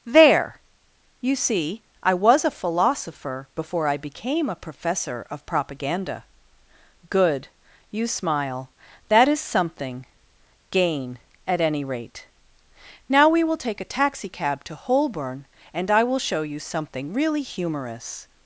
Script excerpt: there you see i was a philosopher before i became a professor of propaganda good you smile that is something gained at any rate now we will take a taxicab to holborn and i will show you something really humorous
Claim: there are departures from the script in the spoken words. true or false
true